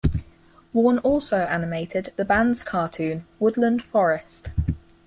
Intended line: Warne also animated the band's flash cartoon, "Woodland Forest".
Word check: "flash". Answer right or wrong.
wrong